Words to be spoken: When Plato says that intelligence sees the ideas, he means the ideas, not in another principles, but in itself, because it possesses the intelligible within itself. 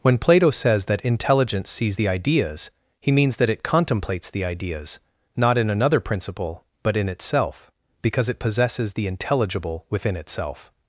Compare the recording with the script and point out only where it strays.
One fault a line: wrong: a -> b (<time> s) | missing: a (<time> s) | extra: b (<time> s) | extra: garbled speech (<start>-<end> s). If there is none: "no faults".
extra: that it contemplates (3.4 s)
wrong: principles -> principle (6.0 s)